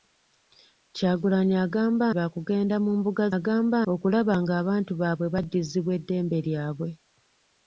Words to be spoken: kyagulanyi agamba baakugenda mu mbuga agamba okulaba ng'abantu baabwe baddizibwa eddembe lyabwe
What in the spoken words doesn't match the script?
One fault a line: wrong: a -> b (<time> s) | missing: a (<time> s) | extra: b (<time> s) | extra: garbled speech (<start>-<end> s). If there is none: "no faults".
no faults